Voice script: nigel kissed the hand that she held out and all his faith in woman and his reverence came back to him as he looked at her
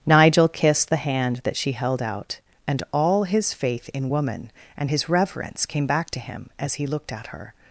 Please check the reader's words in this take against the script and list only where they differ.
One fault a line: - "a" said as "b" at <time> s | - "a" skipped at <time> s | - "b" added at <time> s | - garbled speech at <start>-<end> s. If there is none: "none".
none